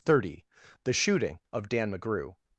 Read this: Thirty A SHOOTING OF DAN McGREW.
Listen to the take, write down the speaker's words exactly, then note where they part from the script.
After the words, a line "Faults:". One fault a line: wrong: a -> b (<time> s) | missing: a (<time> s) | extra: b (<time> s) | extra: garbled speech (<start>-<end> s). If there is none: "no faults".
Thirty THE SHOOTING OF DAN McGREW.
Faults:
wrong: A -> THE (0.8 s)